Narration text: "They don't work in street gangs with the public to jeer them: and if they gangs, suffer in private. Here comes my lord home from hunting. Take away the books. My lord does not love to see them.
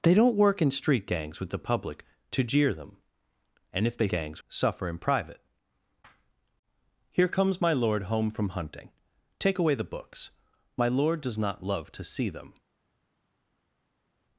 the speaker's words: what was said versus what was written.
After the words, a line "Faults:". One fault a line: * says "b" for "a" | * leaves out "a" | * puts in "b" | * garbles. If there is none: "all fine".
"They don't work in street gangs with the public to jeer them: and if they gangs, suffer in private. Here comes my lord home from hunting. Take away the books. My lord does not love to see them.
Faults:
all fine